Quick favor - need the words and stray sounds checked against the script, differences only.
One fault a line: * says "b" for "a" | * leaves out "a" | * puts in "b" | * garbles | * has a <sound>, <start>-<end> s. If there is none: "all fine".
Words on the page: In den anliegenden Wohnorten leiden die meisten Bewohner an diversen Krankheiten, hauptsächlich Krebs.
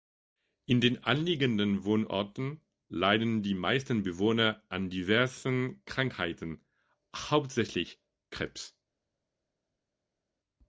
all fine